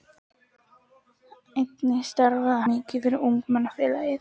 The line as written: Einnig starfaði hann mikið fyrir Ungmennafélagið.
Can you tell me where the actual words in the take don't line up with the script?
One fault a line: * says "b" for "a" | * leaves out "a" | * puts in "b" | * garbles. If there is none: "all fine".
* leaves out "hann"